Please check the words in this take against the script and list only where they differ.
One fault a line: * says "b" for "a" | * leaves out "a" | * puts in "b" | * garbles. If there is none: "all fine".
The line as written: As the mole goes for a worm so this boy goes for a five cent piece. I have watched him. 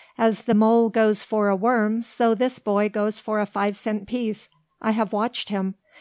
all fine